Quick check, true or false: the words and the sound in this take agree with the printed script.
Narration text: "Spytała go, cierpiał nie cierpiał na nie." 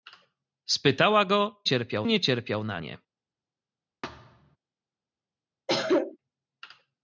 false